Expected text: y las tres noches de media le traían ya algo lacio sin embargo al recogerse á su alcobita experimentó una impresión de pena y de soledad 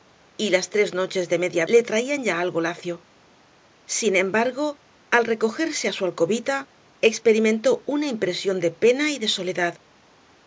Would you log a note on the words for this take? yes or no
no